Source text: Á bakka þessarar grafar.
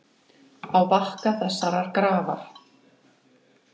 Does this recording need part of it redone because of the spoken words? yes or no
no